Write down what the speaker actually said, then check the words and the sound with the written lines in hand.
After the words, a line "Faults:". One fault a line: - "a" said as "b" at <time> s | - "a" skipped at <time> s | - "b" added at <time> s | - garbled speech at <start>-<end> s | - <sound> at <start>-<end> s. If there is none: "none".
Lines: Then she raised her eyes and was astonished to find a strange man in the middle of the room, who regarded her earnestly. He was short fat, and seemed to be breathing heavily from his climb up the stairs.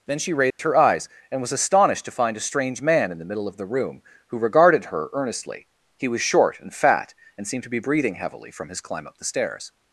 Then she raised her eyes and was astonished to find a strange man in the middle of the room, who regarded her earnestly. He was short and fat, and seemed to be breathing heavily from his climb up the stairs.
Faults:
- dropout at 0.5-0.6 s
- "and" added at 6.6 s